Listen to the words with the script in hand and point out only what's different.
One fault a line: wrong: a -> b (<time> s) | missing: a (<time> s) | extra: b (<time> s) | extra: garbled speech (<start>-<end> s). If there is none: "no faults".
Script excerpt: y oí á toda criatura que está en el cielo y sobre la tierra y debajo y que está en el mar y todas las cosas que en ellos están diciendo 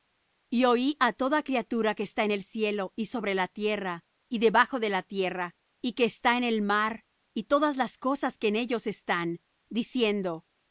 extra: de la tierra (4.8 s)